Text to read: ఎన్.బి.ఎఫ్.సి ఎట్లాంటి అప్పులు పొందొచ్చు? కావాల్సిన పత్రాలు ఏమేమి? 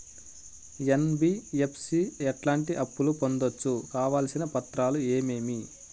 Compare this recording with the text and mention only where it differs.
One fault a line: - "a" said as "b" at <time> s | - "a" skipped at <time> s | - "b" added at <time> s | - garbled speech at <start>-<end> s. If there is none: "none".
none